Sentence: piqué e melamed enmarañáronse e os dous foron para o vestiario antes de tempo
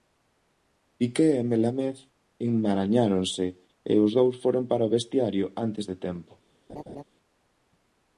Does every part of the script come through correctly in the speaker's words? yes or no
yes